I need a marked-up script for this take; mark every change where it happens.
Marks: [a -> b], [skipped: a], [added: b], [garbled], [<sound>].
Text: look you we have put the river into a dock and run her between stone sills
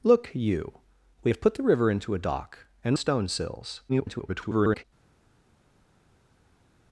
look you we have put the river into a dock and [skipped: run her between] stone sills [garbled]